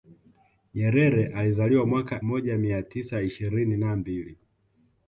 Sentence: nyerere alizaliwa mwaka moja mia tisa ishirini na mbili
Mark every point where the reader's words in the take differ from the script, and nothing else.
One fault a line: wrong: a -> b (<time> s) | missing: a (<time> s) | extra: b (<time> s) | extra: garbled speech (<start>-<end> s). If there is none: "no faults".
no faults